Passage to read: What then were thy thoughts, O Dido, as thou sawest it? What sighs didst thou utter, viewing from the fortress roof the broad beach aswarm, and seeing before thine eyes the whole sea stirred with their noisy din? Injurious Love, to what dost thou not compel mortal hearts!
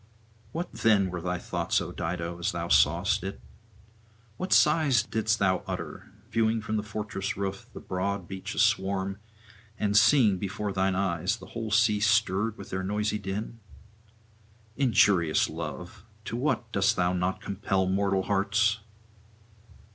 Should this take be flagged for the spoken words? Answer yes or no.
no